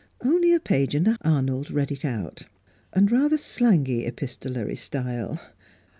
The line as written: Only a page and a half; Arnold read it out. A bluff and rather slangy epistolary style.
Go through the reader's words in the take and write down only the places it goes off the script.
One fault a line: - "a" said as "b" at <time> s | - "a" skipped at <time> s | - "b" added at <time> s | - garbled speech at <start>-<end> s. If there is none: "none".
- "half" skipped at 1.1 s
- "A bluff" skipped at 2.4 s